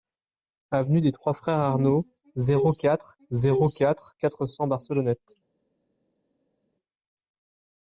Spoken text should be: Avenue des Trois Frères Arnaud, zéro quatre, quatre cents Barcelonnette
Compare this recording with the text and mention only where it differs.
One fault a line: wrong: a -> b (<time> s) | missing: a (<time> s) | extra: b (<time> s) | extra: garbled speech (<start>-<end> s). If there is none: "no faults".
extra: zéro quatre (3.3 s)